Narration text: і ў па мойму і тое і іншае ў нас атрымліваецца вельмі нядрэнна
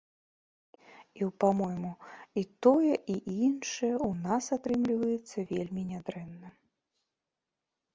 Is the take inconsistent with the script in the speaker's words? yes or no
no